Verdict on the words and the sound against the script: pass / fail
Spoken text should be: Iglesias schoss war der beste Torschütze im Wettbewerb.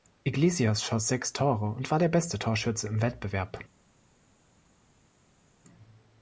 fail